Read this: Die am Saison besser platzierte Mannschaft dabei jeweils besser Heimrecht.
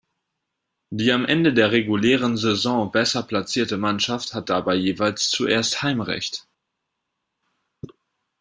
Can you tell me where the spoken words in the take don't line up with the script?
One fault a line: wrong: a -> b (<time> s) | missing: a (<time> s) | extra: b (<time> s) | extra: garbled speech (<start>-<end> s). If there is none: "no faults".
extra: Ende der regulären (1.2 s)
extra: hat (4.3 s)
wrong: besser -> zuerst (5.3 s)